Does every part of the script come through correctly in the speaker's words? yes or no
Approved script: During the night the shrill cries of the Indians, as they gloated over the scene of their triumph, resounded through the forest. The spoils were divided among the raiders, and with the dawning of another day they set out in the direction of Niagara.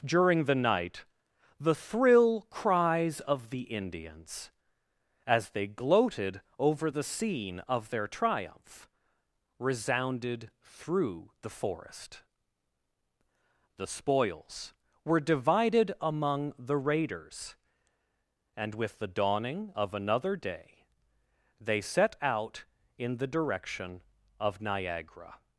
no